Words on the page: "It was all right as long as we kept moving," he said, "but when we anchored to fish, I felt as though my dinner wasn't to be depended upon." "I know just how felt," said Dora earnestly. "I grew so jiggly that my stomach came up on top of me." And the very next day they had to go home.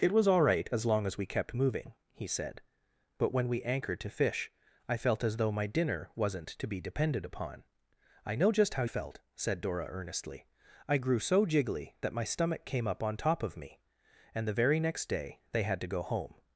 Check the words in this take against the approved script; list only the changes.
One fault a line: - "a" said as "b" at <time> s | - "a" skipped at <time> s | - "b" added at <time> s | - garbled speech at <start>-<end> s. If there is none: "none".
none